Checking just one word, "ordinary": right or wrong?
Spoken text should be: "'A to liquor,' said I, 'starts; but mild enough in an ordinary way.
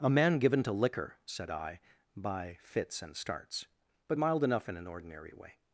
right